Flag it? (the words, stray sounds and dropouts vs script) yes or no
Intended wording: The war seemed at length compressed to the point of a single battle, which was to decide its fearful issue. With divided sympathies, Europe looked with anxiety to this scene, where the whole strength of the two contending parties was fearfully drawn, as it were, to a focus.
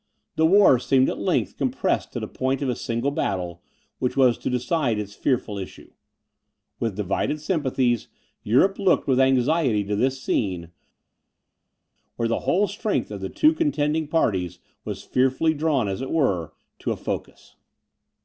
no